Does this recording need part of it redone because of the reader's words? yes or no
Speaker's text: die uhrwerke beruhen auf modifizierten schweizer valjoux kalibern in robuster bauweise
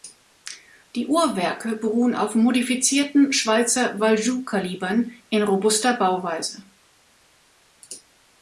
no